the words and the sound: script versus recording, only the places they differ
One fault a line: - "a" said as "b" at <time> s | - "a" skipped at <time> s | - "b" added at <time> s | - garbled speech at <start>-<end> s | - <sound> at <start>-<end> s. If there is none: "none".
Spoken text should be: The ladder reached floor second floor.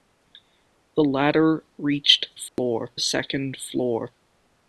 - dropout at 2.5-2.6 s